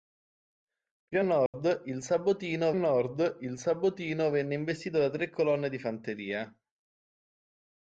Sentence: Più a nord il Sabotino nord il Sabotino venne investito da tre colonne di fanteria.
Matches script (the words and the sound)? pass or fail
fail